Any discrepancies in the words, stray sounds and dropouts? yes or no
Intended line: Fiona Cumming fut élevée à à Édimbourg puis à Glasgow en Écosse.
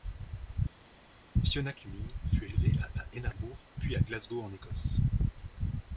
no